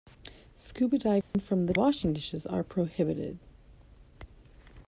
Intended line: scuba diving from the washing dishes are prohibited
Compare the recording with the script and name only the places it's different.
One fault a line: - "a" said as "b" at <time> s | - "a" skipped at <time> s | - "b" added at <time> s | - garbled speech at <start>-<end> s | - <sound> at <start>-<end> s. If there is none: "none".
- dropout at 1.2-1.3 s